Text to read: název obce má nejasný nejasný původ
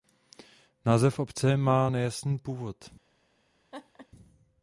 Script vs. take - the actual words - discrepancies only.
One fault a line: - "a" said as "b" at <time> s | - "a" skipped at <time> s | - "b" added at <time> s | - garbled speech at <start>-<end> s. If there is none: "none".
- "nejasný" skipped at 2.4 s